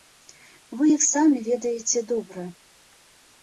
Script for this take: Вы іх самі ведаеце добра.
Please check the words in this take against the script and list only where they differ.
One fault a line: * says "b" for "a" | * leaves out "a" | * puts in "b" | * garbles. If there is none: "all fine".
all fine